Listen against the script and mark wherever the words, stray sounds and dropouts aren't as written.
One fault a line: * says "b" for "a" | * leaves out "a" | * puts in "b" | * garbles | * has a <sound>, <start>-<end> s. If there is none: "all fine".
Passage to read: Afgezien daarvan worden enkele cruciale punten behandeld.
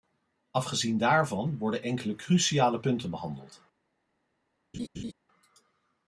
* has a laugh, 4.7-5.1 s